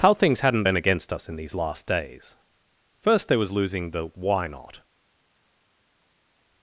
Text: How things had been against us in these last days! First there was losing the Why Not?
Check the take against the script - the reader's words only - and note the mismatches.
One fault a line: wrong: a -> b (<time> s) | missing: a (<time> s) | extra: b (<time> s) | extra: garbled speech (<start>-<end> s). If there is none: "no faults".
wrong: had -> hadn't (0.4 s)